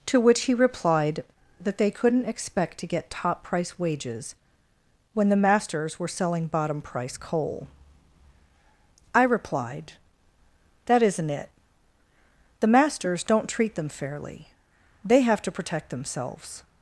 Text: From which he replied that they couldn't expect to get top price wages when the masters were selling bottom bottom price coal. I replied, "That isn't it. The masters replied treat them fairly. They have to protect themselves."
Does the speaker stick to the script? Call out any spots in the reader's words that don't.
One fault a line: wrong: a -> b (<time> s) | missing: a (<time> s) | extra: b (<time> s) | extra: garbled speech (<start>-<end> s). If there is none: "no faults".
wrong: From -> To (0.1 s)
missing: bottom (6.8 s)
wrong: replied -> don't (13.2 s)